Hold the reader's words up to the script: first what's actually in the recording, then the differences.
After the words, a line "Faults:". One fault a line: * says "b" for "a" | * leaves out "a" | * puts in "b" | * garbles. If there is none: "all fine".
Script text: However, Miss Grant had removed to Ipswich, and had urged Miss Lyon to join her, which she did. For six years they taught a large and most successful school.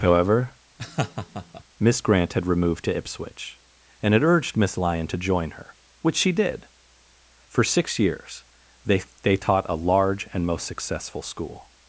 However, Miss Grant had removed to Ipswich, and had urged Miss Lyon to join her, which she did. For six years they they taught a large and most successful school.
Faults:
* puts in "they"